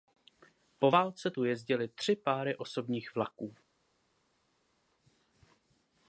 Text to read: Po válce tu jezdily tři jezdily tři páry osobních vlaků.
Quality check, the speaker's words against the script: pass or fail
fail